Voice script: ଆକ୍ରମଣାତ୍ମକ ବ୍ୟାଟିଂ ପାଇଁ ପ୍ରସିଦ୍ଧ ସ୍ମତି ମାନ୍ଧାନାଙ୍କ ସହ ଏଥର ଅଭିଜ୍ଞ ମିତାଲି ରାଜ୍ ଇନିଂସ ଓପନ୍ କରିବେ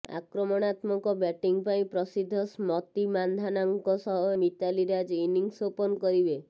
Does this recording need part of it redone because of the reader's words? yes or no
yes